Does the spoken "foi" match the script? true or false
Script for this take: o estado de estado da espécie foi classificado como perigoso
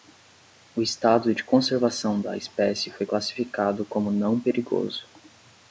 true